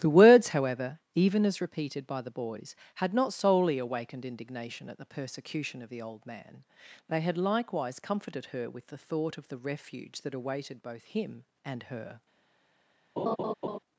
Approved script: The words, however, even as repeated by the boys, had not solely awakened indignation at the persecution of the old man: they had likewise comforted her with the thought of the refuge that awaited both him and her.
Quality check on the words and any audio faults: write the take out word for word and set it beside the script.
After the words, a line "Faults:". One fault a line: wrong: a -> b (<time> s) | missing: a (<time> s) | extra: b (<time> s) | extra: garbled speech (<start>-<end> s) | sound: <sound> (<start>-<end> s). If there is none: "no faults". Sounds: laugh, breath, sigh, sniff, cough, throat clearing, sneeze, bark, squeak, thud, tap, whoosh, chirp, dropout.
The words, however, even as repeated by the boys, had not solely awakened indignation at the persecution of the old man: they had likewise comforted her with the thought of the refuge that awaited both him and her.
Faults:
sound: laugh (13.2-13.8 s)